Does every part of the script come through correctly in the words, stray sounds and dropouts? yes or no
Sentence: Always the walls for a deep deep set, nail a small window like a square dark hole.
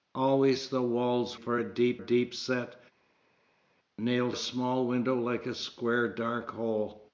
yes